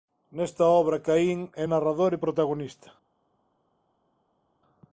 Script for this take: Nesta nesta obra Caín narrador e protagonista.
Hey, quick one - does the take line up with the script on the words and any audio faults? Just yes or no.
no